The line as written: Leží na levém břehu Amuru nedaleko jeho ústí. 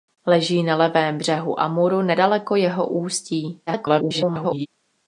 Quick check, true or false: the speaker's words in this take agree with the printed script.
false